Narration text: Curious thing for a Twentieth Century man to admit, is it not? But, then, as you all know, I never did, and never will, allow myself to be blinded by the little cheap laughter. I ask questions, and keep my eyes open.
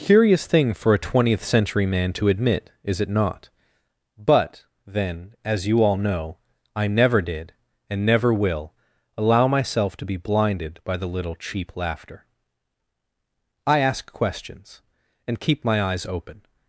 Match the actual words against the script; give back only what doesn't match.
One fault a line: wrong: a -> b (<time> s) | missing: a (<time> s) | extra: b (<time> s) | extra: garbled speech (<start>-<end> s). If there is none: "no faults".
no faults